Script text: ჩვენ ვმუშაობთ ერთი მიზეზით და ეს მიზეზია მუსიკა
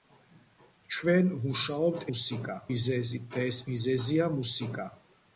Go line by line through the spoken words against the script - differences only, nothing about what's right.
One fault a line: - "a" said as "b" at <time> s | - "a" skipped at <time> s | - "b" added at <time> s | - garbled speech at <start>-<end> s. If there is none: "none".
- "ერთი" said as "მუსიკა" at 2.1 s